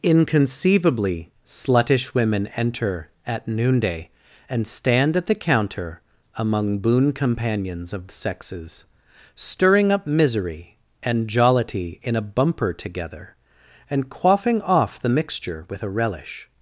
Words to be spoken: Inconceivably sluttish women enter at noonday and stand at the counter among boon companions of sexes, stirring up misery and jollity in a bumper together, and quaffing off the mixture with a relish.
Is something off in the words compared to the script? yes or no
no